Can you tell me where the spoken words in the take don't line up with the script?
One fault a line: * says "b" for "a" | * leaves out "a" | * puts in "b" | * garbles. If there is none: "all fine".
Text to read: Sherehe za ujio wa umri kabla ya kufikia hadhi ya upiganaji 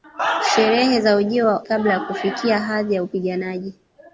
* leaves out "umri"